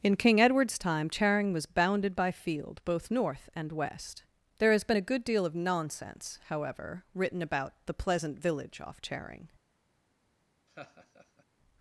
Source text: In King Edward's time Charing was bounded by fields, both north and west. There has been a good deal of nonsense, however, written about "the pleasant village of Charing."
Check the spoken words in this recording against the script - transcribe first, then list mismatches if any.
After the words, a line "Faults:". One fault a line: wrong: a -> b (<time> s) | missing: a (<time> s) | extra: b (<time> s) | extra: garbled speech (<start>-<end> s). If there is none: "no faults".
In King Edward's time Charing was bounded by field, both north and west. There has been a good deal of nonsense, however, written about "the pleasant village off Charing."
Faults:
wrong: fields -> field (2.3 s)
wrong: of -> off (8.8 s)